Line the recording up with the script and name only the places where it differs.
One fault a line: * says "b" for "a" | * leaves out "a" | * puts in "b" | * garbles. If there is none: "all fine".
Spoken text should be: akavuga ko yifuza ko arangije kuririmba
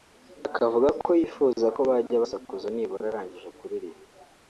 * puts in "bajya basakuza nibura"